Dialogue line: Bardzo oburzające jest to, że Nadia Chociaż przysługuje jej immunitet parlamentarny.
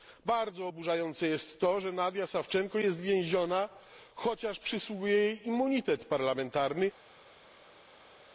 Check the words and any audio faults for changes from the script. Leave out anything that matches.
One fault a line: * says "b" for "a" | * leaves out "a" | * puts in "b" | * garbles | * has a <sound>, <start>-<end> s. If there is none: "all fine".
* puts in "Sawczenko jest więziona"